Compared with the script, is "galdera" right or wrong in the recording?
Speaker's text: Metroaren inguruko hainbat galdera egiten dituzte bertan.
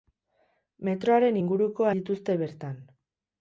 wrong